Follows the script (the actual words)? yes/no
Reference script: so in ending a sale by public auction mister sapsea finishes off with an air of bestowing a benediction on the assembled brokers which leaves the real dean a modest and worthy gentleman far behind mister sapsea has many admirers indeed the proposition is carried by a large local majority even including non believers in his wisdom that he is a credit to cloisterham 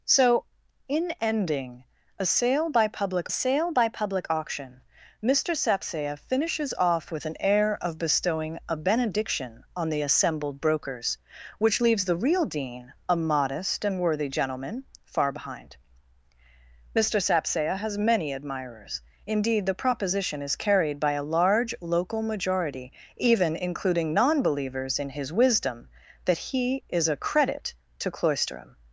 no